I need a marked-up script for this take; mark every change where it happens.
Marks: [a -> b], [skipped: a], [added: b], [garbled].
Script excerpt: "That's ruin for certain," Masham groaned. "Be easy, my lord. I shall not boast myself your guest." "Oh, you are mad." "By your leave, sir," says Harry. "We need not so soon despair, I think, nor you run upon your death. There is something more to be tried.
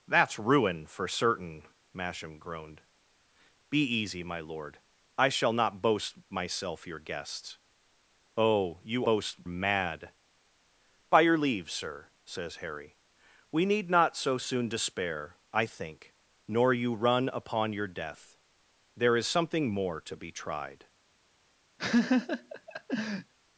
"That's ruin for certain," Masham groaned. "Be easy, my lord. I shall not boast myself your guest." "Oh, you [are -> boast] mad." "By your leave, sir," says Harry. "We need not so soon despair, I think, nor you run upon your death. There is something more to be tried.